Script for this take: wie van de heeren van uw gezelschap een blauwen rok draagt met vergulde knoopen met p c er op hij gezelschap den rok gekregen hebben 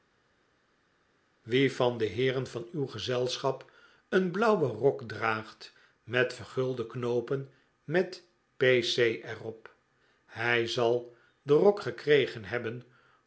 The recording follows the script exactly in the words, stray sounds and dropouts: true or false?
false